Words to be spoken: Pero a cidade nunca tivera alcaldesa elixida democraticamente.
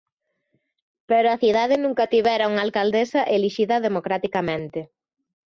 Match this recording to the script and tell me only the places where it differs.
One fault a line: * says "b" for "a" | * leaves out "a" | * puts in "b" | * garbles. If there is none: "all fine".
* puts in "unha"